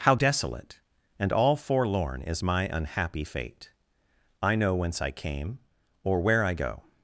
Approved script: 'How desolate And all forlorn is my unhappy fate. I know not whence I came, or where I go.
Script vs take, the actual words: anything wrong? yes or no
yes